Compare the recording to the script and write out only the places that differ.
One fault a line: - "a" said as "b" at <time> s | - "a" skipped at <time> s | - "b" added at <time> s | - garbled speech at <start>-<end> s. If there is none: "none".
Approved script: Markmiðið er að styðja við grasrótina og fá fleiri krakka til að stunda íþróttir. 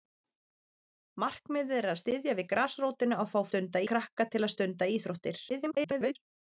- "fleiri" said as "stunda" at 3.5 s
- garbled speech at 5.5-6.2 s